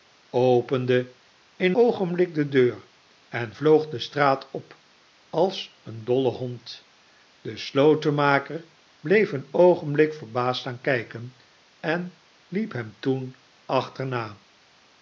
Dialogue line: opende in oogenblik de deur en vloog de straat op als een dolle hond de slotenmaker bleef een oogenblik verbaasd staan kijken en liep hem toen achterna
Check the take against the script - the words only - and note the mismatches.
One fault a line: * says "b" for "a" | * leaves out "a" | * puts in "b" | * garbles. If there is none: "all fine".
all fine